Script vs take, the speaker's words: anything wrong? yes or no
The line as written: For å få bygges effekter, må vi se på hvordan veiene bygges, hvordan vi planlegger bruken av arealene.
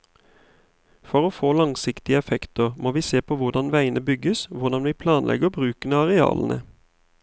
yes